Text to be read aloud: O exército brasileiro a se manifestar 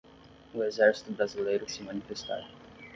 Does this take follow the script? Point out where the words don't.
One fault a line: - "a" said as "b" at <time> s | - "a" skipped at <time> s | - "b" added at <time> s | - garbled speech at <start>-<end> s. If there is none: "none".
none